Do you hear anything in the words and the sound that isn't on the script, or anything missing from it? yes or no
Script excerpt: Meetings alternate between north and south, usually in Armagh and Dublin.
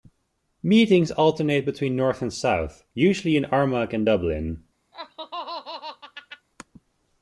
yes